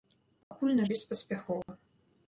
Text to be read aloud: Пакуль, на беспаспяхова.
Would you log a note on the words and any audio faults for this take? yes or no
yes